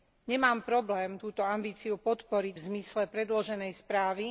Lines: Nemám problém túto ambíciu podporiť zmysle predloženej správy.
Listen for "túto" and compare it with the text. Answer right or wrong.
right